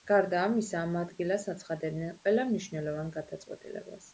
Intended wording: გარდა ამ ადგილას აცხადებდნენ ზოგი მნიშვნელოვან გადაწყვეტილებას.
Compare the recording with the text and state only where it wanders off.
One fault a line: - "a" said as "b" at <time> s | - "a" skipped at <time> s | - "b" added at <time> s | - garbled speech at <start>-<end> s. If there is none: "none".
- "ამისა" added at 0.4 s
- "ზოგი" said as "ყველა" at 2.2 s